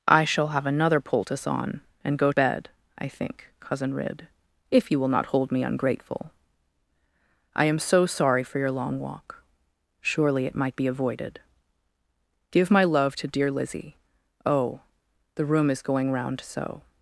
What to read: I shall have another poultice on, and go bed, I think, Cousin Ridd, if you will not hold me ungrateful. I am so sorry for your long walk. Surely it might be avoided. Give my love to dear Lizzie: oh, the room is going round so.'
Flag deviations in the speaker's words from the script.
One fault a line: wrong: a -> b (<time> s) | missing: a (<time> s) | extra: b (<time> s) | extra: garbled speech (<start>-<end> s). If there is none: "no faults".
no faults